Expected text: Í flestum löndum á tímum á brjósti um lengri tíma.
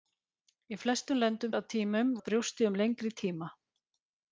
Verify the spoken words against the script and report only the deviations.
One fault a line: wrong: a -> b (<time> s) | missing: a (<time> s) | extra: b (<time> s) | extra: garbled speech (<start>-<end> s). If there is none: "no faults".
no faults